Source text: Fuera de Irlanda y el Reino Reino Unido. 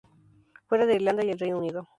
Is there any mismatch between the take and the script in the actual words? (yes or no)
yes